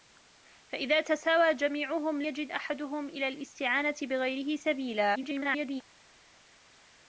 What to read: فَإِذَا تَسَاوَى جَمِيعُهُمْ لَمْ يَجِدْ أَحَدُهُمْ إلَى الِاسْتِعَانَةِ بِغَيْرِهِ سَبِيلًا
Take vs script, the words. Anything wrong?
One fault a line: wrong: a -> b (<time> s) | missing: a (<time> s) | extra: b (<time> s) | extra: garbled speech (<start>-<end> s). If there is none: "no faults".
missing: لَمْ (2.2 s)
extra: garbled speech (5.1-5.8 s)